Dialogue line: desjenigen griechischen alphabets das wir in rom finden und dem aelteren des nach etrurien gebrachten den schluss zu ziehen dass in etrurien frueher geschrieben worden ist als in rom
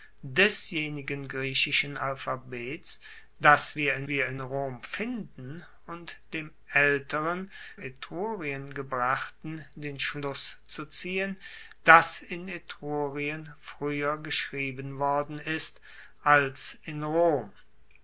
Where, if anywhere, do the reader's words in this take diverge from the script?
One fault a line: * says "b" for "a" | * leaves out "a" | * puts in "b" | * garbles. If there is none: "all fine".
* puts in "wir in"
* leaves out "des nach"